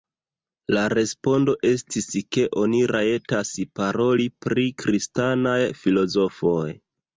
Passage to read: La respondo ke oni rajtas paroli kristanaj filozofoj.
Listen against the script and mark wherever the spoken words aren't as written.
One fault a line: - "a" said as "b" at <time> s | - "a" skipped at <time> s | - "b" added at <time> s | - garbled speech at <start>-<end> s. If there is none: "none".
- "estis" added at 1.7 s
- "pri" added at 4.5 s